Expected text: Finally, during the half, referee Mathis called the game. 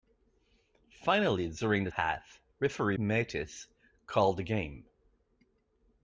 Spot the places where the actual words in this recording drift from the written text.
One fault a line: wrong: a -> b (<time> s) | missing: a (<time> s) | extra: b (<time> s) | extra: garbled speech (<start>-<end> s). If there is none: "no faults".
no faults